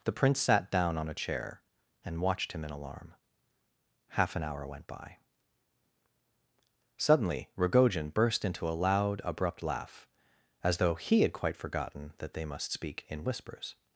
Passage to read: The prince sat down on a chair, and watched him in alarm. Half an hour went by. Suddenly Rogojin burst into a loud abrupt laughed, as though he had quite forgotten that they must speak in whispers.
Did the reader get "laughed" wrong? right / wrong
wrong